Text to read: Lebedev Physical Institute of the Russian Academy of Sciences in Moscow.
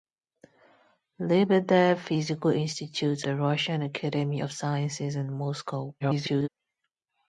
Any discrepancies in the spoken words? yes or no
yes